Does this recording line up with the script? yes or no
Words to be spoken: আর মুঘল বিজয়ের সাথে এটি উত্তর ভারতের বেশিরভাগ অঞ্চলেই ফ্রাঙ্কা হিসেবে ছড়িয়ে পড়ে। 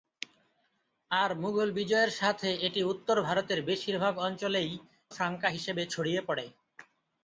yes